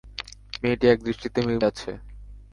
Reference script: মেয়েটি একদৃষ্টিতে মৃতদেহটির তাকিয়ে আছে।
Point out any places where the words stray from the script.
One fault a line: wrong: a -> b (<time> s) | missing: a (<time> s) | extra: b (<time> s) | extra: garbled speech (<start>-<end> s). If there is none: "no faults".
missing: মৃতদেহটির তাকিয়ে (1.4 s)